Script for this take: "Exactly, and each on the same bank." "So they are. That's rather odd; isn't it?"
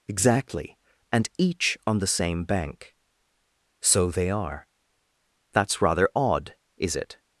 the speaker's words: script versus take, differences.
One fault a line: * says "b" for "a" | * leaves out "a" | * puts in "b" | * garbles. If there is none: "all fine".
* says "is" for "isn't"